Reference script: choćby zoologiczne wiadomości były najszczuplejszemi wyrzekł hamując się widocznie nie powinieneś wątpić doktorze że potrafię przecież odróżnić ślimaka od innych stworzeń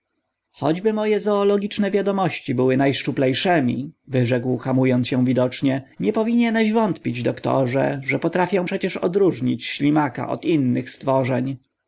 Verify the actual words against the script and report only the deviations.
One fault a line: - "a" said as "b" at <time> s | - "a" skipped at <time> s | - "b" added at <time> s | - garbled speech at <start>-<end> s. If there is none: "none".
- "moje" added at 0.9 s